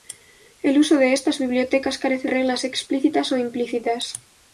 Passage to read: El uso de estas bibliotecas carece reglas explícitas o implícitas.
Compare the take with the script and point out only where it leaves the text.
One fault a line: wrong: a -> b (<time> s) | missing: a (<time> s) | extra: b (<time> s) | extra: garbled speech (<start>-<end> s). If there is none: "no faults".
no faults